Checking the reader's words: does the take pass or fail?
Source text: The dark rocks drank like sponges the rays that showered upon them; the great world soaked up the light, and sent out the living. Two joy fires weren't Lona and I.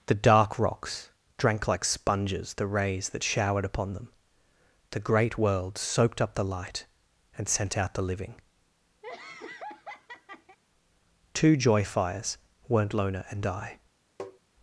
pass